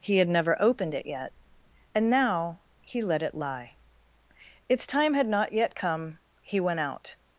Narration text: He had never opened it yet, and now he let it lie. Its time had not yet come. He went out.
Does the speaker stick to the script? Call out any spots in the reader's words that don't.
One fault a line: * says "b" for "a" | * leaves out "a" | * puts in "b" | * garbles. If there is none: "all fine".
all fine